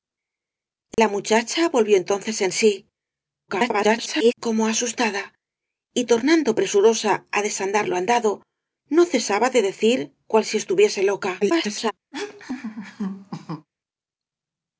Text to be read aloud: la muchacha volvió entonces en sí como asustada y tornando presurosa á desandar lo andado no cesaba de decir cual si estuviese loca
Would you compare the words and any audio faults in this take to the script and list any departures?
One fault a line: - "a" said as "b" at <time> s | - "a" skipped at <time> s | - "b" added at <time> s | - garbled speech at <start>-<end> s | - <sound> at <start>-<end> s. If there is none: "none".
- dropout at 0.9-1.0 s
- garbled speech at 3.5-4.3 s
- garbled speech at 11.4-11.9 s
- laugh at 12.1-13.7 s